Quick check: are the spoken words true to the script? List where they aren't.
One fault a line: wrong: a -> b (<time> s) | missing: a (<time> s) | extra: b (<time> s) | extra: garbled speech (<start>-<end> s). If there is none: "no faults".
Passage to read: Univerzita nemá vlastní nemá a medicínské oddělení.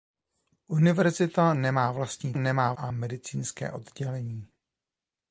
no faults